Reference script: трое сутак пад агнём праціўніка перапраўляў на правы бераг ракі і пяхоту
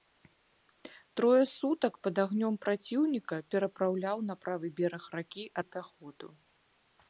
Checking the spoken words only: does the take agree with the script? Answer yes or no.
yes